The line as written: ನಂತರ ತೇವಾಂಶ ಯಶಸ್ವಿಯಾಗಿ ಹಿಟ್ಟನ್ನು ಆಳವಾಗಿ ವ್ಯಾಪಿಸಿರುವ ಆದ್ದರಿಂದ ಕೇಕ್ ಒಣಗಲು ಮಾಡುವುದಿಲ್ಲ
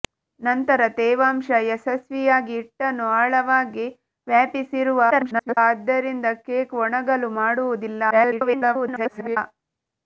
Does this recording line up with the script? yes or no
no